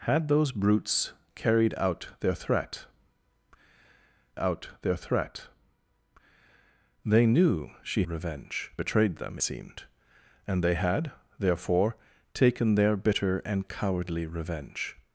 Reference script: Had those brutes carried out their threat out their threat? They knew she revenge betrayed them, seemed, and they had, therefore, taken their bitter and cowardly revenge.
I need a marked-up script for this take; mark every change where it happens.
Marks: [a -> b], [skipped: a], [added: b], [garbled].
Had those brutes carried out their threat out their threat? They knew she revenge betrayed them, seemed, and they had, therefore, taken their bitter and cowardly revenge.